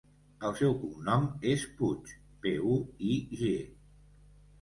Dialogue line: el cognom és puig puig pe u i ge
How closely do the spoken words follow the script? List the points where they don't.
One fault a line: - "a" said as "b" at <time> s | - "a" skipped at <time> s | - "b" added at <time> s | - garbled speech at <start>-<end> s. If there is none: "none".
- "seu" added at 0.6 s
- "puig" skipped at 2.1 s